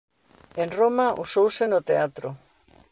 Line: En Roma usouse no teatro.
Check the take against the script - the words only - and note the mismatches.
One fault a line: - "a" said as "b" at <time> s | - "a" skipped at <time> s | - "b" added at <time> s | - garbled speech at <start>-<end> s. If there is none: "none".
none